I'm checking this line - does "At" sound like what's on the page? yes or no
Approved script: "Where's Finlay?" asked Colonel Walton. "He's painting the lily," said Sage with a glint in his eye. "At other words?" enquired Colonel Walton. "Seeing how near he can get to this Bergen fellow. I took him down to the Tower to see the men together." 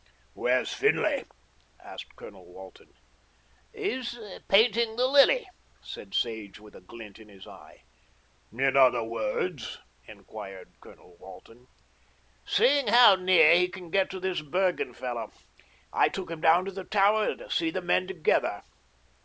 no